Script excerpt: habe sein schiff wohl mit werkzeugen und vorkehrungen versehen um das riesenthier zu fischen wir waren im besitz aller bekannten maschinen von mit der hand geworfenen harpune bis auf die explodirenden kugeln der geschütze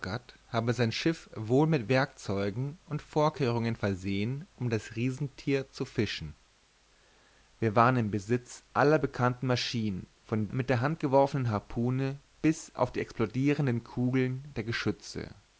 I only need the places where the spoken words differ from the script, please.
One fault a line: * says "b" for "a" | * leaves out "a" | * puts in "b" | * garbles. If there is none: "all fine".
all fine